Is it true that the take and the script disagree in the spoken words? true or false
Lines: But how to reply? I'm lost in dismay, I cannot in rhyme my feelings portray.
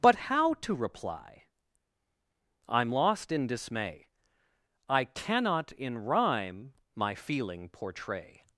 true